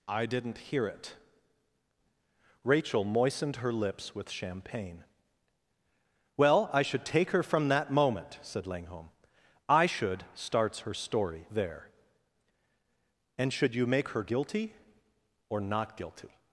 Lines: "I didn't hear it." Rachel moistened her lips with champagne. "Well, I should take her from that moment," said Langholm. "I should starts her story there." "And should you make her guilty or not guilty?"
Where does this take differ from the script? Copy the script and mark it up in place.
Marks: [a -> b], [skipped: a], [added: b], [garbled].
"I didn't hear it." Rachel moistened her lips with champagne. "Well, I should take her from that moment," said Langholm. "I should starts her story there." "And should you make her guilty or not guilty?"